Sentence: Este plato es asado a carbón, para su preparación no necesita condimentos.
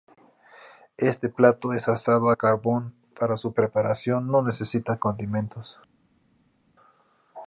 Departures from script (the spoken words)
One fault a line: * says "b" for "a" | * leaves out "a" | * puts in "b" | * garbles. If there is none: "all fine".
all fine